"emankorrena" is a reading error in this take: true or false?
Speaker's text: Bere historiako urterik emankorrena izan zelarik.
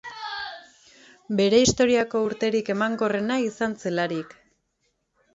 false